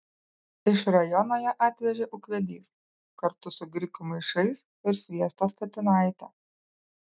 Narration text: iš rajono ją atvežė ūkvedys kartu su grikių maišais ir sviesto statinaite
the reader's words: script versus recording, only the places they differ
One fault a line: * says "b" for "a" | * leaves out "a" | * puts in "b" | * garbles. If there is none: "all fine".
all fine